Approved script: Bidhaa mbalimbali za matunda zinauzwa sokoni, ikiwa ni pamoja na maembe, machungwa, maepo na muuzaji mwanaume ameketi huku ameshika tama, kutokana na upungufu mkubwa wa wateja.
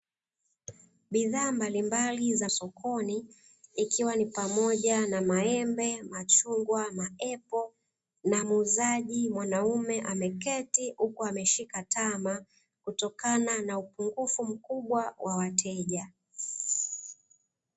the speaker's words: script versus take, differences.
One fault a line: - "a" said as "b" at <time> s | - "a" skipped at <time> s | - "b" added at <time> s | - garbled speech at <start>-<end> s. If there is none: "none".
- "matunda zinauzwa" skipped at 2.5 s